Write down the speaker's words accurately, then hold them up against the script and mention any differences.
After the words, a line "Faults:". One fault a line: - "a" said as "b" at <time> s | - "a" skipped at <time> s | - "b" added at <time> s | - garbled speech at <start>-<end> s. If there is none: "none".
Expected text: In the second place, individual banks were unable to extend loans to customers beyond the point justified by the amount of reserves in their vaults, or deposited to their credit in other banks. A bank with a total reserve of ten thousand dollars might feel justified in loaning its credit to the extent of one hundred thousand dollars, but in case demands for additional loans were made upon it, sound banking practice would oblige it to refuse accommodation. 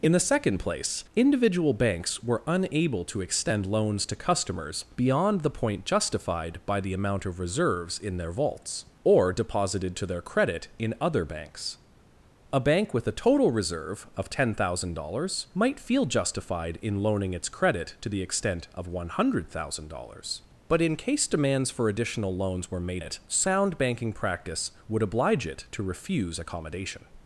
In the second place, individual banks were unable to extend loans to customers beyond the point justified by the amount of reserves in their vaults, or deposited to their credit in other banks. A bank with a total reserve of ten thousand dollars might feel justified in loaning its credit to the extent of one hundred thousand dollars, but in case demands for additional loans were made it, sound banking practice would oblige it to refuse accommodation.
Faults:
- "upon" skipped at 23.0 s